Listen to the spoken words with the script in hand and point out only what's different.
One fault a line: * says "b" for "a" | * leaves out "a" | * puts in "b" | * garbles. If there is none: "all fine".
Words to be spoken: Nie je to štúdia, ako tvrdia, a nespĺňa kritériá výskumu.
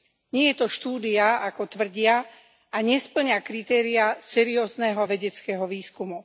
* puts in "seriózneho vedeckého"